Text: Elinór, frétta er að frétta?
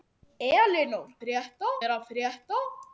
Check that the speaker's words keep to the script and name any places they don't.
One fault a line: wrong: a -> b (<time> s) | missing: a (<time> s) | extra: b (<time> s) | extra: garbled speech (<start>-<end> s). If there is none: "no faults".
no faults